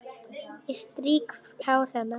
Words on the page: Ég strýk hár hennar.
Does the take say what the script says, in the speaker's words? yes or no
yes